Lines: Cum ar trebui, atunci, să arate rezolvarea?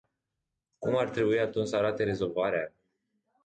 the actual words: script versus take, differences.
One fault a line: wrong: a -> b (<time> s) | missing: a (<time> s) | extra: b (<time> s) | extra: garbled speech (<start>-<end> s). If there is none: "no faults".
no faults